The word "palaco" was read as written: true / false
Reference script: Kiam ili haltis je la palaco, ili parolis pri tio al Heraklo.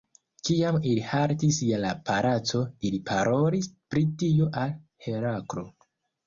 true